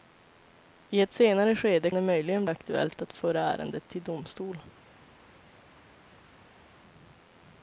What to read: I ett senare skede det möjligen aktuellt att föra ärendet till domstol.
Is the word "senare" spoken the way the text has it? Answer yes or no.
yes